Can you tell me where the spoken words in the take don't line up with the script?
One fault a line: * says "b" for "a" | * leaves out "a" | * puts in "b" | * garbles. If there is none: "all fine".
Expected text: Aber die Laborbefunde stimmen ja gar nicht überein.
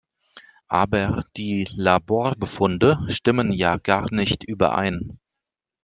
all fine